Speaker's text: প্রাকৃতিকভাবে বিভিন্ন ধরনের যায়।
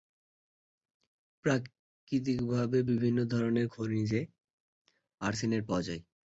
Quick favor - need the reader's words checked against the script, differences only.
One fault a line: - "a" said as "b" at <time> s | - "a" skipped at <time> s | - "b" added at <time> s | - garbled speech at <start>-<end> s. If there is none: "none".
- "খনিজে আর্সেনেট পাওয়া" added at 3.7 s